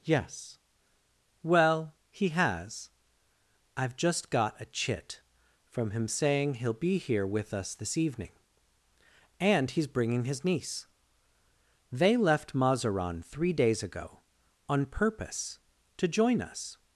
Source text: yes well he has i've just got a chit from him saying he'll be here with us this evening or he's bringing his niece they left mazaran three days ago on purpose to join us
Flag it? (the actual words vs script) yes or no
yes